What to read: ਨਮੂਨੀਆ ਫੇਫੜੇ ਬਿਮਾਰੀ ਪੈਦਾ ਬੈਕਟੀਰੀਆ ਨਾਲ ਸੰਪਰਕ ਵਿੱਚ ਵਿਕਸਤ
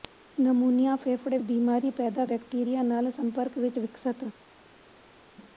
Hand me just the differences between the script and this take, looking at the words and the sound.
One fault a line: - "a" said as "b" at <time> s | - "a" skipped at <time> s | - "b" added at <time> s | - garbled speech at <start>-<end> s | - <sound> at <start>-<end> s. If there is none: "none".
none